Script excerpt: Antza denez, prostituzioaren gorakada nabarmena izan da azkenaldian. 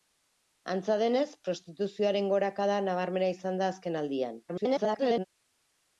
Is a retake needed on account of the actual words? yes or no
yes